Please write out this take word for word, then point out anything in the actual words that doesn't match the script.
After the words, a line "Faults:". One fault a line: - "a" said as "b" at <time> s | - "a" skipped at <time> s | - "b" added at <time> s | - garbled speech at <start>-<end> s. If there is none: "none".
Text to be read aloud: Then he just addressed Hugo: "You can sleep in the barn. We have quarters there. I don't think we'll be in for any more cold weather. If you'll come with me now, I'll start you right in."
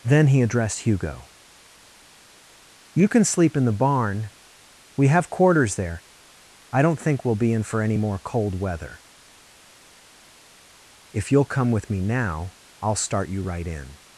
Then he addressed Hugo: "You can sleep in the barn. We have quarters there. I don't think we'll be in for any more cold weather. If you'll come with me now, I'll start you right in."
Faults:
- "just" skipped at 0.4 s